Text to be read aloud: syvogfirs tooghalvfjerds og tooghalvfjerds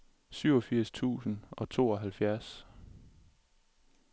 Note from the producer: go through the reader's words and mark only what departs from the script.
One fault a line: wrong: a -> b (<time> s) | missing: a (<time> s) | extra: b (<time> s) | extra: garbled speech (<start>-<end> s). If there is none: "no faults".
wrong: tooghalvfjerds -> tusind (0.9 s)